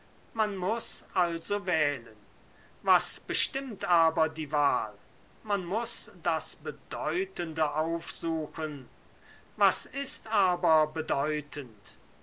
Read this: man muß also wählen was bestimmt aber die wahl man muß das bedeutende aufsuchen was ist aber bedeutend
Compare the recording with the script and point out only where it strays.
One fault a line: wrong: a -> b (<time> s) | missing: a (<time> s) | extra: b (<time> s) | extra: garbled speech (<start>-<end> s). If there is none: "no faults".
no faults